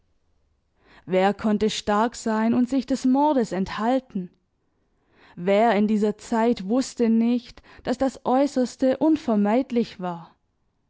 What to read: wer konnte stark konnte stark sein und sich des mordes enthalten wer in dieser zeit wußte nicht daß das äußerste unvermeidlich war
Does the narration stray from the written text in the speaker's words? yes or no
yes